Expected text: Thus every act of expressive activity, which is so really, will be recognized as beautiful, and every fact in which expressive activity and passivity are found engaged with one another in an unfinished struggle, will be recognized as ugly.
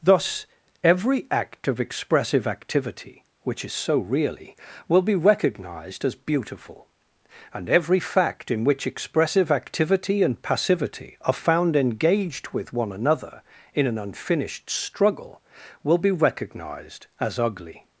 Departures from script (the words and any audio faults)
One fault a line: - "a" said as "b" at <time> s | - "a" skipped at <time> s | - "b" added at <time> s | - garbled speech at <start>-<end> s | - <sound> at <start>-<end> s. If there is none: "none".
none